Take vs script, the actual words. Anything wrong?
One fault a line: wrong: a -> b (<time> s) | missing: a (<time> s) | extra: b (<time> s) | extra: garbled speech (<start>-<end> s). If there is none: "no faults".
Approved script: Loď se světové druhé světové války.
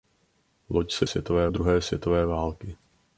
no faults